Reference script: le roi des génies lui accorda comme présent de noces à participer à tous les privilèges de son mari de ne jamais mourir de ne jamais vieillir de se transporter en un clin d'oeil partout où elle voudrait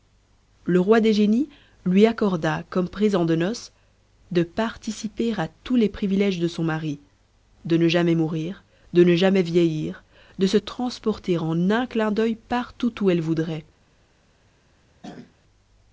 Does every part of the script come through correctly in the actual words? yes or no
no